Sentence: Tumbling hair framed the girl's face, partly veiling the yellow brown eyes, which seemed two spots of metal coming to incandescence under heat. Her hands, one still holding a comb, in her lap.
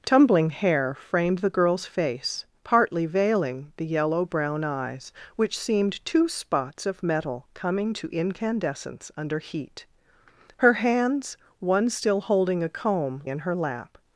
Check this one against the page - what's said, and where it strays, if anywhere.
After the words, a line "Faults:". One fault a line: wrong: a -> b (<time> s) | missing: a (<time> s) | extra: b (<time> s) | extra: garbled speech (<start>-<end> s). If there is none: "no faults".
Tumbling hair framed the girl's face, partly veiling the yellow brown eyes, which seemed two spots of metal coming to incandescence under heat. Her hands, one still holding a comb, in her lap.
Faults:
no faults